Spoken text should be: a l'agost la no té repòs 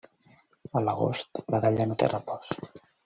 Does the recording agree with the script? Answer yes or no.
no